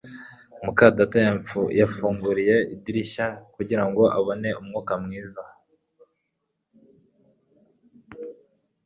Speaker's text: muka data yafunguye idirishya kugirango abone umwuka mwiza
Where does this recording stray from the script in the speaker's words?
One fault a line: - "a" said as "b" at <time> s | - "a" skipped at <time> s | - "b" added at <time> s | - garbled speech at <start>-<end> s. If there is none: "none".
none